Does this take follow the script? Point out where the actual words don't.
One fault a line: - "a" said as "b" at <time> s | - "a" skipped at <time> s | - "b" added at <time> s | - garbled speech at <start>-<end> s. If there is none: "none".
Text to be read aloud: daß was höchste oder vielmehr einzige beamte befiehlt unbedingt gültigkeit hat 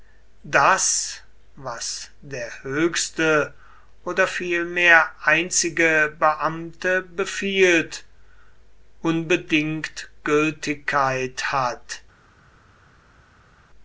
- "der" added at 2.2 s